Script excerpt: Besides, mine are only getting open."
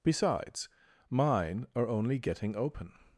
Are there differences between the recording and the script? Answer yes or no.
no